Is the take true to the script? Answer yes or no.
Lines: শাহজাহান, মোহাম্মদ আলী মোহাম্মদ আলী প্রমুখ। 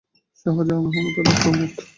no